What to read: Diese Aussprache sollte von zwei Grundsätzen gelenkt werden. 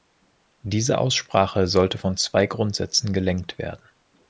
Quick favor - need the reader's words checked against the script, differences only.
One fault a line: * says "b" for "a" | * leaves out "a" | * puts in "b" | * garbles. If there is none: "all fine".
all fine